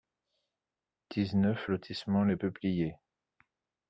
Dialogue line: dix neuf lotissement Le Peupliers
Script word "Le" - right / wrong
wrong